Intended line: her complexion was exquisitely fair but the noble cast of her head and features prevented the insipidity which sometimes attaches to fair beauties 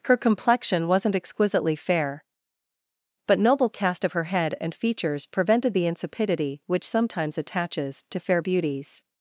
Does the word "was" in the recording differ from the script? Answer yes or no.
yes